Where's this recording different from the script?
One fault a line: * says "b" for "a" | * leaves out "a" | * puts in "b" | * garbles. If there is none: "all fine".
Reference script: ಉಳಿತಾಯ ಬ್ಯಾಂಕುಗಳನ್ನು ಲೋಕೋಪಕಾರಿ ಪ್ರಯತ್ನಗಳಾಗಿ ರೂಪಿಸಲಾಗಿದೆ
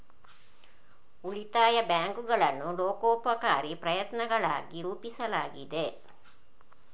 all fine